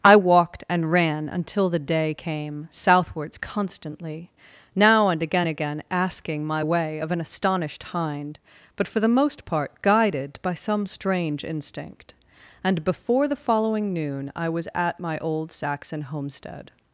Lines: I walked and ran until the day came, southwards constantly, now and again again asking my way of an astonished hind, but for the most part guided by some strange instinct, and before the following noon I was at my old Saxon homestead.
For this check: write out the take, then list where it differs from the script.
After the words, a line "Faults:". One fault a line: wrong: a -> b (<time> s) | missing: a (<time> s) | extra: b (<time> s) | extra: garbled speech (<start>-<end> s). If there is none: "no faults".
I walked and ran until the day came, southwards constantly, now and again again asking my way of an astonished hind, but for the most part guided by some strange instinct, and before the following noon I was at my old Saxon homestead.
Faults:
no faults